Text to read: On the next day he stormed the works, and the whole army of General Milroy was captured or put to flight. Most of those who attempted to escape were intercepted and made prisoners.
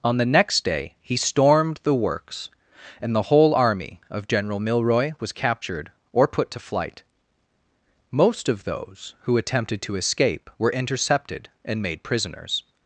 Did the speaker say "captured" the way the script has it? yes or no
yes